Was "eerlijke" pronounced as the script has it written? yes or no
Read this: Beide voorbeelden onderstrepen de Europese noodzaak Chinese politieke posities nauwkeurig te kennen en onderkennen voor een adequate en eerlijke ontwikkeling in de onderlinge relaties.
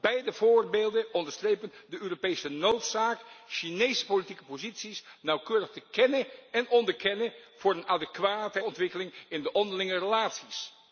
no